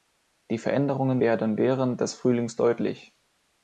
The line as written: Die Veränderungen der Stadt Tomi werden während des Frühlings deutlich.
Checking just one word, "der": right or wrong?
wrong